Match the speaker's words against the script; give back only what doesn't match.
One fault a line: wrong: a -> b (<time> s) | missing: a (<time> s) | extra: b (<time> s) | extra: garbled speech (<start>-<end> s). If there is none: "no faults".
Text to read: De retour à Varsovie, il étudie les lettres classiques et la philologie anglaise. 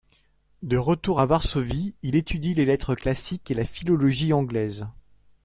no faults